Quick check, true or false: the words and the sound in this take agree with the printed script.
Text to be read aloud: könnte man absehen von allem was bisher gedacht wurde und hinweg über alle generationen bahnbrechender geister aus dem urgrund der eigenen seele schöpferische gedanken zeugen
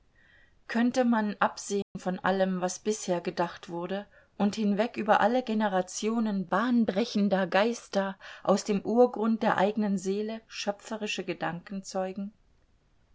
false